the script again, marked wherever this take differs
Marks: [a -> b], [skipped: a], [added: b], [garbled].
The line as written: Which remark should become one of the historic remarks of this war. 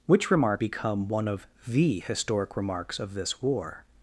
Which remark [skipped: should] become one of the historic remarks of this war.